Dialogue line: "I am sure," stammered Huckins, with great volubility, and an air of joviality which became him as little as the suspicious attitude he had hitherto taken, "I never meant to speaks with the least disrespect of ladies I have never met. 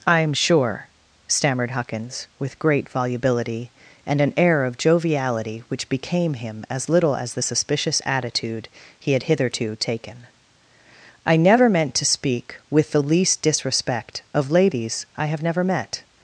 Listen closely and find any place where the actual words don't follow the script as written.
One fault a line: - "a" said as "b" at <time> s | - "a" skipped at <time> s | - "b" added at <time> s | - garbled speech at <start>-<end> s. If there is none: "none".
- "speaks" said as "speak" at 12.1 s